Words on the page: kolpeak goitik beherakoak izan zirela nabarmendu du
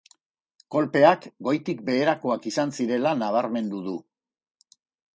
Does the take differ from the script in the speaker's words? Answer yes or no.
no